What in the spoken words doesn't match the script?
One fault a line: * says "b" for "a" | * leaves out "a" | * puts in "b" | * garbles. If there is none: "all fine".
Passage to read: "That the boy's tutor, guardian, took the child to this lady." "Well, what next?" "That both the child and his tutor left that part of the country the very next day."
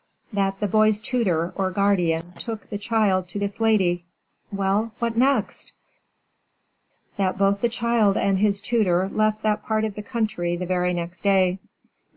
* puts in "or"